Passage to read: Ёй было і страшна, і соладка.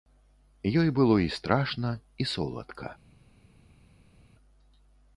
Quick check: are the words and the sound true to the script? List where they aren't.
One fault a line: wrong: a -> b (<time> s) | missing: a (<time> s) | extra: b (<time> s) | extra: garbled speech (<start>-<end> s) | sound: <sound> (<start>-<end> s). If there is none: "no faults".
no faults